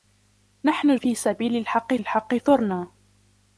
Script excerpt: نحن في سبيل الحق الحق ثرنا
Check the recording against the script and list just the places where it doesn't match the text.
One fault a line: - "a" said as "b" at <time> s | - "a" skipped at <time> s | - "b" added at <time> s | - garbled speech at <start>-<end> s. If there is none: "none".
none